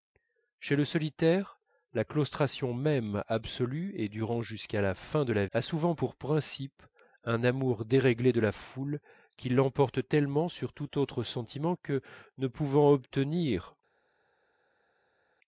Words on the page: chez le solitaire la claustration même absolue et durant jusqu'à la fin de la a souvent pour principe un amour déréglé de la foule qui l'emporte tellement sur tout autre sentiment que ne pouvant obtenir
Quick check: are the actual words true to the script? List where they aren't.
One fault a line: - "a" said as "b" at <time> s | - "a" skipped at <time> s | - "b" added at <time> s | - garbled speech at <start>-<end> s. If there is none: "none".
none